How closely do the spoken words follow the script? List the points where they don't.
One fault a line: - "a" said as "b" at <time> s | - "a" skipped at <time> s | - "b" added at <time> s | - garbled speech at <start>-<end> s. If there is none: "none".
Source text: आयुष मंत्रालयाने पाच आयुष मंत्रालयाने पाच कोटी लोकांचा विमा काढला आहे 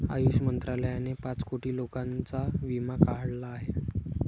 - "आयुष मंत्रालयाने पाच" skipped at 1.4 s